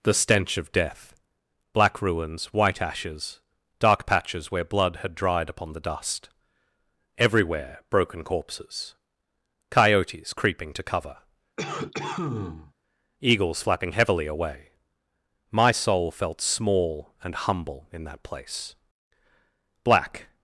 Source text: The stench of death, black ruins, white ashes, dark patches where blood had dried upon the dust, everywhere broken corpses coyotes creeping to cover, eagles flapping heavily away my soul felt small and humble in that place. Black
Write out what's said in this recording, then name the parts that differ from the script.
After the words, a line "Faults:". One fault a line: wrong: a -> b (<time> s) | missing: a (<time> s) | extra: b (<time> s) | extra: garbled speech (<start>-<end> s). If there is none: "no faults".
The stench of death, black ruins, white ashes, dark patches where blood had dried upon the dust, everywhere broken corpses coyotes creeping to cover, eagles flapping heavily away my soul felt small and humble in that place. Black
Faults:
no faults